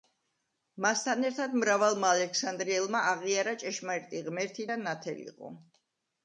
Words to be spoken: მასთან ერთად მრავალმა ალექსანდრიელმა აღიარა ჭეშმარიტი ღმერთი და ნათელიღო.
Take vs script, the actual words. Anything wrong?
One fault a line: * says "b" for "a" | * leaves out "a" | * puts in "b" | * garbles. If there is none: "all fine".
all fine